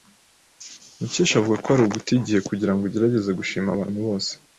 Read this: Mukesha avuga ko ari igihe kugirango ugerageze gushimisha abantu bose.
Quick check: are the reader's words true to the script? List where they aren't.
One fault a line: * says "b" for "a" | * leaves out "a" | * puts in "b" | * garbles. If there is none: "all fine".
* puts in "uguta"